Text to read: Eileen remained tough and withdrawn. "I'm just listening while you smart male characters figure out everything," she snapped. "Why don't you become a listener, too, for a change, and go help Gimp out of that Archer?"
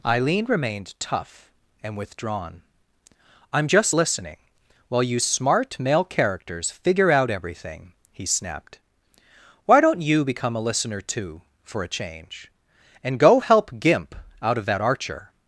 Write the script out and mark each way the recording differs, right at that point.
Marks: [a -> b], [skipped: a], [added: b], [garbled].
Eileen remained tough and withdrawn. "I'm just listening while you smart male characters figure out everything," [she -> he] snapped. "Why don't you become a listener, too, for a change, and go help Gimp out of that Archer?"